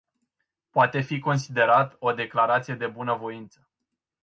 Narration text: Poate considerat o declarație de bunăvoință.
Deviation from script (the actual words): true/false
true